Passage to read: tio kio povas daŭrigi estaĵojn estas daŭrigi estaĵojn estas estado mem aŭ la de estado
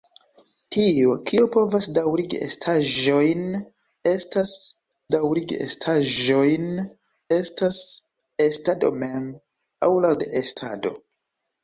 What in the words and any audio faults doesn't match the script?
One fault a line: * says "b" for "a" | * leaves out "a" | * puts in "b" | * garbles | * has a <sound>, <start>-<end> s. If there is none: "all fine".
all fine